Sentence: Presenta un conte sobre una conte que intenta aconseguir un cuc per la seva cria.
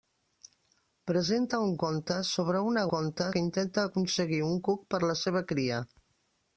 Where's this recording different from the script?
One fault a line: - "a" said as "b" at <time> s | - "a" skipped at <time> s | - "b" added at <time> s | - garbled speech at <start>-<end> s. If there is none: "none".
none